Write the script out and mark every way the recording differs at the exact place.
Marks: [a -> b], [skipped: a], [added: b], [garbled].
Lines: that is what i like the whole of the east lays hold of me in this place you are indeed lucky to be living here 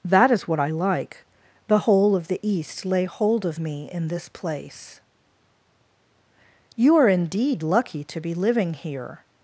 that is what i like the whole of the east [lays -> lay] hold of me in this place you are indeed lucky to be living here